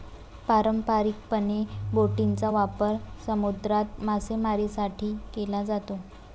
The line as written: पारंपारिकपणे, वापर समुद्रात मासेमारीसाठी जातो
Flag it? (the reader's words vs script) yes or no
yes